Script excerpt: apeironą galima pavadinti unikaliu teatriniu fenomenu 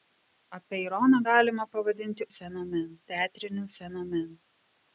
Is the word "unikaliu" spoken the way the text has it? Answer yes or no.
no